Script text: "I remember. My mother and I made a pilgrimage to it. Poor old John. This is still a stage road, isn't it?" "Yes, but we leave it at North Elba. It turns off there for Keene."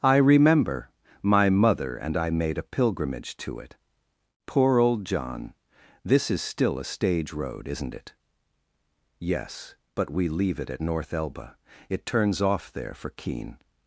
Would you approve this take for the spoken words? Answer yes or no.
yes